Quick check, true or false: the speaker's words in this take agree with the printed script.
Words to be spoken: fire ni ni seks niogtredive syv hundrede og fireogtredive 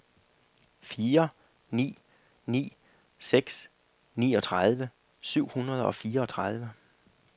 true